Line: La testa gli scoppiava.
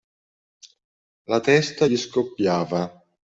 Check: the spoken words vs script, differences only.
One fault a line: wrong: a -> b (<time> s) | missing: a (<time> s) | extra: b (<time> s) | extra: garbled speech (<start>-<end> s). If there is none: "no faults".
no faults